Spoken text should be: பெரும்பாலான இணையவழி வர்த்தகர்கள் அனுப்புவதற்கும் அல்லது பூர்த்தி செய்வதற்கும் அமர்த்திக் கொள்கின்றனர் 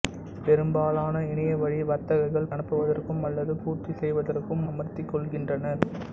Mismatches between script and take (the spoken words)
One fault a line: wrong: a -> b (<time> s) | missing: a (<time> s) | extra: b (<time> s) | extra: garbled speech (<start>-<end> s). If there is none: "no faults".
no faults